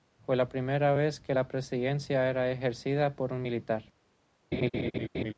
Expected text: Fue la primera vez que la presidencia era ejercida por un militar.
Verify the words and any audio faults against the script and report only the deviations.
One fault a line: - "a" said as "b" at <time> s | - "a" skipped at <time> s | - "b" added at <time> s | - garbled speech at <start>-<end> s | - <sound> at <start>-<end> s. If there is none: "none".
- laugh at 4.5-5.3 s